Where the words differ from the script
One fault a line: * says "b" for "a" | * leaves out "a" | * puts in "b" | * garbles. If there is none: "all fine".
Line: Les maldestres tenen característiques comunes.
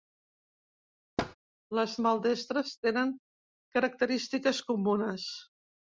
all fine